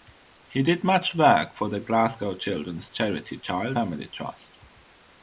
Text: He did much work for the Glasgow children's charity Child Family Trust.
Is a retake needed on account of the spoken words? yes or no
no